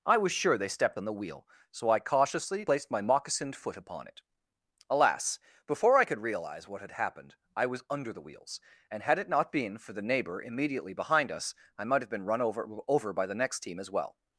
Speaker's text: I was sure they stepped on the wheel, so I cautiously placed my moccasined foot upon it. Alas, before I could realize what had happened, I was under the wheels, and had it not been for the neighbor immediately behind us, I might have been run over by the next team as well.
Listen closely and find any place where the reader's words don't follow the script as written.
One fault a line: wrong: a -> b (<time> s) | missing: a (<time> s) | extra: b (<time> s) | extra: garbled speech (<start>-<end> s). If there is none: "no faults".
extra: over (12.9 s)